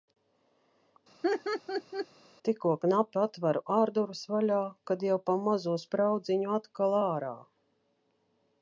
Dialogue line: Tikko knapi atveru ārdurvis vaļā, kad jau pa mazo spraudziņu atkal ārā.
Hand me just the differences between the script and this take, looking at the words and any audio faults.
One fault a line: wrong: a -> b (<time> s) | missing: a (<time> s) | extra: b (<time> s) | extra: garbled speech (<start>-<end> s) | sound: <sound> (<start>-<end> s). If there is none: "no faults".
sound: laugh (1.2-2.1 s)